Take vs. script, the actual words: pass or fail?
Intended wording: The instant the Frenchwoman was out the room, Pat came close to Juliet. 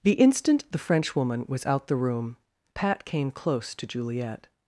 pass